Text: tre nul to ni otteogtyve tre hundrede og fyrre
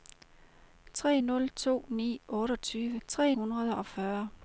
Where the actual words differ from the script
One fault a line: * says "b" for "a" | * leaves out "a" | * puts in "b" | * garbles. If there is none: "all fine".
all fine